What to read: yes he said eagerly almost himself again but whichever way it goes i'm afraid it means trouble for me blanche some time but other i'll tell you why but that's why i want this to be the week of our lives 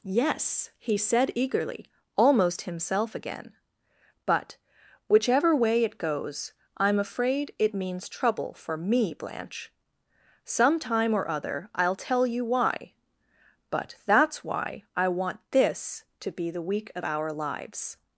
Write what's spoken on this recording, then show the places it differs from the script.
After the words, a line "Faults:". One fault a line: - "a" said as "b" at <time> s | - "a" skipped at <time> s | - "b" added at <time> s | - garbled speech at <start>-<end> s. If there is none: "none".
yes he said eagerly almost himself again but whichever way it goes i'm afraid it means trouble for me blanche some time or other i'll tell you why but that's why i want this to be the week of our lives
Faults:
- "but" said as "or" at 11.1 s